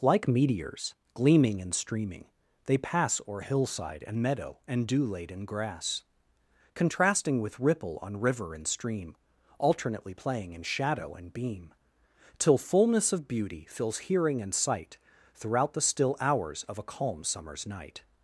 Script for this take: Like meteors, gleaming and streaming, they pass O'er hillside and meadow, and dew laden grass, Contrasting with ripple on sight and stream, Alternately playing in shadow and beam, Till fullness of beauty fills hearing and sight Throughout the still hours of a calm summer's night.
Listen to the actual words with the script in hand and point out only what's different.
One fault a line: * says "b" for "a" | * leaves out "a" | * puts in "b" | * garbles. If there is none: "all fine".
* says "river" for "sight"